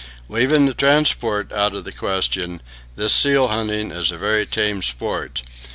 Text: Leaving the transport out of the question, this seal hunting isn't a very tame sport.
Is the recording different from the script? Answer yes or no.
yes